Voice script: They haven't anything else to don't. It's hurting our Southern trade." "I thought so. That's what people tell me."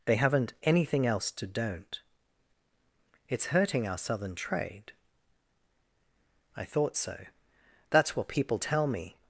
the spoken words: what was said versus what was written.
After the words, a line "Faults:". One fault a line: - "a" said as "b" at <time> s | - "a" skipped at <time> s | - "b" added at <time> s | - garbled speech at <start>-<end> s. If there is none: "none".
They haven't anything else to don't. It's hurting our Southern trade." "I thought so. That's what people tell me."
Faults:
none